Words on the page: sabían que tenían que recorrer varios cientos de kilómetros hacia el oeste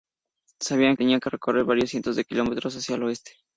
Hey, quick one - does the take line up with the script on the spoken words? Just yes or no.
no